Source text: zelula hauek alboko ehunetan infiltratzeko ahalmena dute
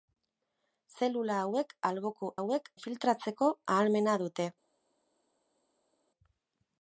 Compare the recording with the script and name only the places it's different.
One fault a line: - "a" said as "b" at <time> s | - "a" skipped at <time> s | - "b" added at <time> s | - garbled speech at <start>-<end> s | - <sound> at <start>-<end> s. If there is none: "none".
- "ehunetan" said as "hauek" at 2.4 s